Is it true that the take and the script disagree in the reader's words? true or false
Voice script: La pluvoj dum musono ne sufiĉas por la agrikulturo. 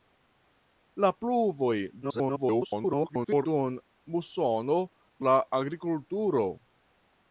true